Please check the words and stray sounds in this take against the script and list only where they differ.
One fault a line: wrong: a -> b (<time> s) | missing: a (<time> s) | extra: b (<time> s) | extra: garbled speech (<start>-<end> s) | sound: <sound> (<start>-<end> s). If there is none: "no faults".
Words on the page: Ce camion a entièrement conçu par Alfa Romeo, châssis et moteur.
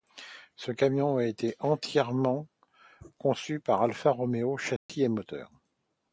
extra: été (1.2 s)
sound: dropout (4.8-4.9 s)